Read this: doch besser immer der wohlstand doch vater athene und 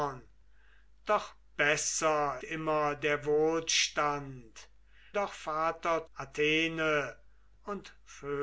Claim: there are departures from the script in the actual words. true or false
false